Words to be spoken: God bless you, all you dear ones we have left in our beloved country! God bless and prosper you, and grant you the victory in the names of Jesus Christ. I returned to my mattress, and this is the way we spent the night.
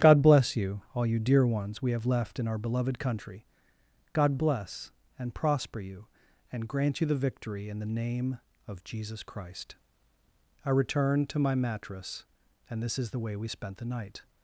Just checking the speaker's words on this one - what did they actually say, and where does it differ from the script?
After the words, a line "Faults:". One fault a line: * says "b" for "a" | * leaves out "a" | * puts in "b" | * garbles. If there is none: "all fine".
God bless you, all you dear ones we have left in our beloved country! God bless and prosper you, and grant you the victory in the name of Jesus Christ. I returned to my mattress, and this is the way we spent the night.
Faults:
* says "name" for "names"